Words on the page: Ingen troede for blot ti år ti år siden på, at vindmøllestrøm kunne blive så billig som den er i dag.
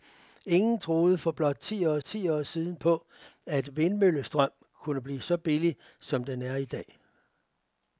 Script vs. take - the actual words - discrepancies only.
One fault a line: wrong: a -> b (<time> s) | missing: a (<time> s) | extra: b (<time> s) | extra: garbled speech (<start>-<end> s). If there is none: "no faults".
no faults